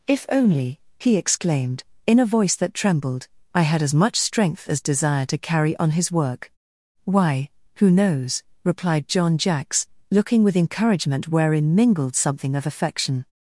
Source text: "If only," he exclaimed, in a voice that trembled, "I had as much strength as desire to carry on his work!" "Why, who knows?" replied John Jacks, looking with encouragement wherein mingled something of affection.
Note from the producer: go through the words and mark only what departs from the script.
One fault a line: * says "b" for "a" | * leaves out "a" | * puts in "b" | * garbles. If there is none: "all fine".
all fine